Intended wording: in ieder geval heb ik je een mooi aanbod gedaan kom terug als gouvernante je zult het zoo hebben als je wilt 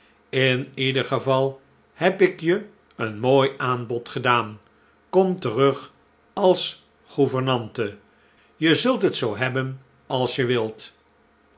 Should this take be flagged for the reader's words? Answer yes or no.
no